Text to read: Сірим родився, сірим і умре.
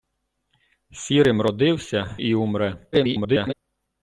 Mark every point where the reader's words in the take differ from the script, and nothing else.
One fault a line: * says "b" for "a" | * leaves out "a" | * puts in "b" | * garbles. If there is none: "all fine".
* leaves out "сірим"
* garbles